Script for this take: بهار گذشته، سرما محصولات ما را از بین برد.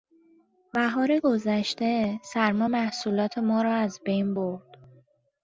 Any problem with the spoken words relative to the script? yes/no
no